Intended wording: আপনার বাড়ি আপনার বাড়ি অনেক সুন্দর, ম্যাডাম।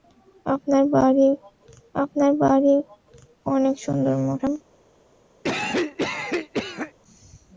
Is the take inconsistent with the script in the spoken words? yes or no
no